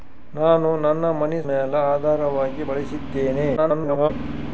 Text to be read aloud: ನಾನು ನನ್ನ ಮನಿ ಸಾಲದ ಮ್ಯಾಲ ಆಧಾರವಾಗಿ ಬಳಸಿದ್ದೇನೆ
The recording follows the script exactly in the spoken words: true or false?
false